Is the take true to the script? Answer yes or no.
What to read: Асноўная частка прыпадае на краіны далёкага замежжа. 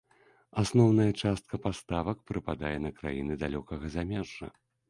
no